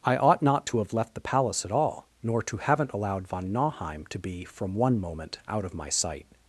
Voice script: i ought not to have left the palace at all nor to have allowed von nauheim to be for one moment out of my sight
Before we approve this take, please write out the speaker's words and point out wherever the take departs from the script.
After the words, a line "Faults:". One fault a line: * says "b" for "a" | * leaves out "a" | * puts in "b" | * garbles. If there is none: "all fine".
i ought not to have left the palace at all nor to haven't allowed von nauheim to be from one moment out of my sight
Faults:
* says "haven't" for "have"
* says "from" for "for"